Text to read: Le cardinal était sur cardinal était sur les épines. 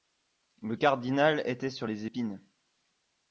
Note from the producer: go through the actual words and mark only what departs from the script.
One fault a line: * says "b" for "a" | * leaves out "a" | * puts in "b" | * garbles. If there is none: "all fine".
* leaves out "cardinal était sur"